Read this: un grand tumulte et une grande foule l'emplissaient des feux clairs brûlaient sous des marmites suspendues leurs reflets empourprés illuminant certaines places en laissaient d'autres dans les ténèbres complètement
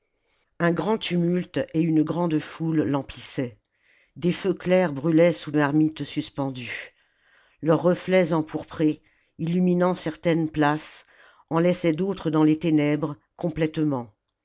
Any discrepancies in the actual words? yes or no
yes